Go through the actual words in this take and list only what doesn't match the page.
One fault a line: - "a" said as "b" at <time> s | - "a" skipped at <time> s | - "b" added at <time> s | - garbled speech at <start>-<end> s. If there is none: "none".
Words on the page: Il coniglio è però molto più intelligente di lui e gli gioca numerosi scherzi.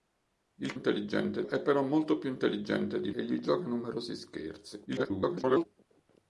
- "coniglio" said as "intelligente" at 0.7 s
- "lui" skipped at 3.1 s
- garbled speech at 4.9-5.7 s